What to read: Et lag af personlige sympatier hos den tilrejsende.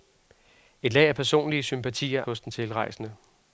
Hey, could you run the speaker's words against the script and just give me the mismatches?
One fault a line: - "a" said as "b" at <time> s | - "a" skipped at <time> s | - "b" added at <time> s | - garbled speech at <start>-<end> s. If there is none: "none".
none